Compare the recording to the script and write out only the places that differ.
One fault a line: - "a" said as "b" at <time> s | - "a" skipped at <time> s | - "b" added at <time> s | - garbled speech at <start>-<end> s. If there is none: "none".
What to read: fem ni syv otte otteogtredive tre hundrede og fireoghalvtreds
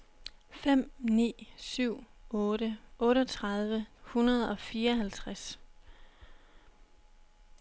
- "tre" skipped at 3.9 s